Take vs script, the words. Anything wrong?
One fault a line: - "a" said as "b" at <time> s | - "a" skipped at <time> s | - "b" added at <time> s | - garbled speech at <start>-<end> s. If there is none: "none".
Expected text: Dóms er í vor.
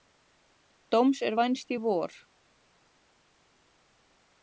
- "vænst" added at 1.4 s